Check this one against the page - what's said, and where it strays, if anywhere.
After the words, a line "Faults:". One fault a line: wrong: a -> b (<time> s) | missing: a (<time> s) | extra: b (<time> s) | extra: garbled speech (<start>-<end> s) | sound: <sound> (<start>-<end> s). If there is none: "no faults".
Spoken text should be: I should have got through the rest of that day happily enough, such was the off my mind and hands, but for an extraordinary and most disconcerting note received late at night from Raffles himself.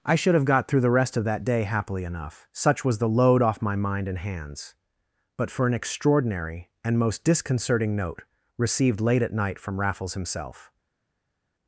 I should have got through the rest of that day happily enough, such was the load off my mind and hands, but for an extraordinary and most disconcerting note received late at night from Raffles himself.
Faults:
extra: load (3.1 s)